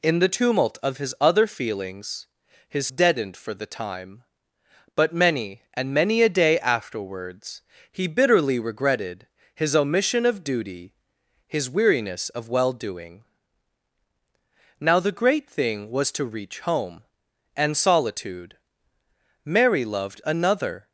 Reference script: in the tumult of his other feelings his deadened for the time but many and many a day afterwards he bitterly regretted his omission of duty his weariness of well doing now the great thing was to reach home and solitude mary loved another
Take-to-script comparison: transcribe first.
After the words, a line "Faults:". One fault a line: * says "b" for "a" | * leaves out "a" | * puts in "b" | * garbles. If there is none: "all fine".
in the tumult of his other feelings his deadened for the time but many and many a day afterwards he bitterly regretted his omission of duty his weariness of well doing now the great thing was to reach home and solitude mary loved another
Faults:
all fine